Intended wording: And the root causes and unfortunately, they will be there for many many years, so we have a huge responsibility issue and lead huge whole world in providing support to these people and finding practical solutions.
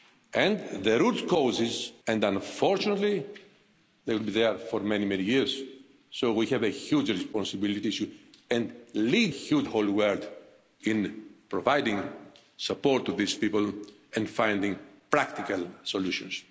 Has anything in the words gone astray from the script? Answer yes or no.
no